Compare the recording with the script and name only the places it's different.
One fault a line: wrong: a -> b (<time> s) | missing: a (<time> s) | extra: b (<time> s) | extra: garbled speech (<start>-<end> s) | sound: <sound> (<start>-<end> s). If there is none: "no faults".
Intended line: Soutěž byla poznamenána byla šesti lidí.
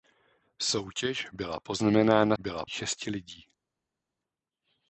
no faults